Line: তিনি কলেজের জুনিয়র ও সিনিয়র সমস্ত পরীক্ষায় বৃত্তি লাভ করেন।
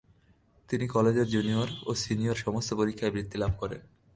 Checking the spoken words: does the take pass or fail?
pass